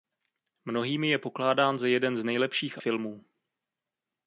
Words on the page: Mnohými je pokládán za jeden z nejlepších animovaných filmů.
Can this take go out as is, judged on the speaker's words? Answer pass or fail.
fail